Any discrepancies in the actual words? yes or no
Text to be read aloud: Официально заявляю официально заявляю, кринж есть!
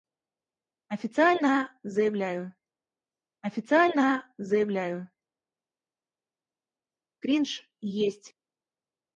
no